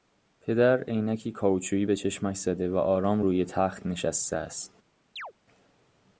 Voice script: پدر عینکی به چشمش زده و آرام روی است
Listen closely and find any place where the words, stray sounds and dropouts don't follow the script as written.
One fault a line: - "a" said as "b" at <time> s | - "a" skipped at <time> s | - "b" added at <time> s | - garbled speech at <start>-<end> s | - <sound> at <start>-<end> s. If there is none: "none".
- "کائوچویی" added at 1.3 s
- "تخت نشسته" added at 3.4 s
- chirp at 5.2-5.3 s